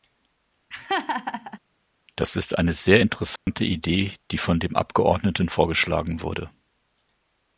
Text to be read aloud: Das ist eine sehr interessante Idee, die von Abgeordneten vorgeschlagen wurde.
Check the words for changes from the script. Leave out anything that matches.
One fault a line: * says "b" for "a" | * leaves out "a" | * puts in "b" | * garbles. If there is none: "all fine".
* puts in "dem"